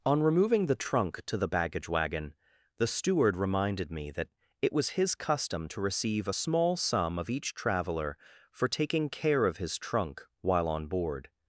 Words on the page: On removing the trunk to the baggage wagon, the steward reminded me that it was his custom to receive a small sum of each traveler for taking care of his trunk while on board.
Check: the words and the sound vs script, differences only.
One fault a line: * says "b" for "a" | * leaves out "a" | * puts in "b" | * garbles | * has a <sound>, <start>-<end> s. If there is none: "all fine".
all fine